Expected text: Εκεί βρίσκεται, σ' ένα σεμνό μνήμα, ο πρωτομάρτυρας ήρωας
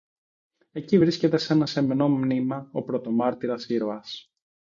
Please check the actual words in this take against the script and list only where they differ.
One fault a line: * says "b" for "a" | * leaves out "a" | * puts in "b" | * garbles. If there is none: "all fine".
all fine